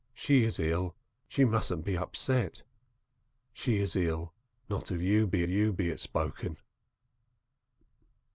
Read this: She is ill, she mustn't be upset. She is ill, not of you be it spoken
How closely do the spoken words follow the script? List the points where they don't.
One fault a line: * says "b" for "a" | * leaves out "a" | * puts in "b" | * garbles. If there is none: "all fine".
* puts in "you be"